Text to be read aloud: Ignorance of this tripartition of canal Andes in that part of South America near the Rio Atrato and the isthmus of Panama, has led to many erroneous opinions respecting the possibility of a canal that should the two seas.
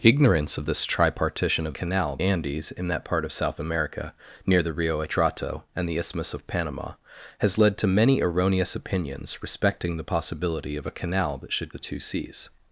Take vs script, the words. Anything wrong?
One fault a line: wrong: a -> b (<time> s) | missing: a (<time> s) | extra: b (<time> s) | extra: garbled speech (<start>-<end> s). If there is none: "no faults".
no faults